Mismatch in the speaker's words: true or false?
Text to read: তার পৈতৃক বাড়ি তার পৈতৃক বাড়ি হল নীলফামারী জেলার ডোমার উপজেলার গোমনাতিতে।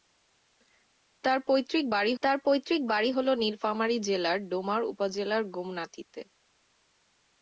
false